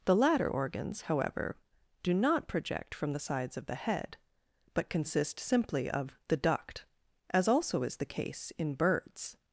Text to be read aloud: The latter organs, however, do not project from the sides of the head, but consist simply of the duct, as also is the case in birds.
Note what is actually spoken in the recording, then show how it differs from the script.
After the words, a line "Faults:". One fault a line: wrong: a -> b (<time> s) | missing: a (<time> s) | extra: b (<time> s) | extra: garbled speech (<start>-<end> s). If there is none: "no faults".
The latter organs, however, do not project from the sides of the head, but consist simply of the duct, as also is the case in birds.
Faults:
no faults